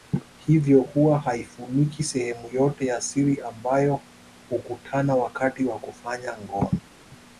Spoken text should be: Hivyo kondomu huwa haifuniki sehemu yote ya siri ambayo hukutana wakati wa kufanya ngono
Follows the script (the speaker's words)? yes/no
no